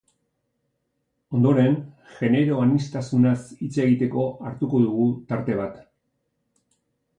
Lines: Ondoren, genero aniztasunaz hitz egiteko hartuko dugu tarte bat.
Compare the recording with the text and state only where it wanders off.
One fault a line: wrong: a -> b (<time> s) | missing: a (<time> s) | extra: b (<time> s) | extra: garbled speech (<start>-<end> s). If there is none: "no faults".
no faults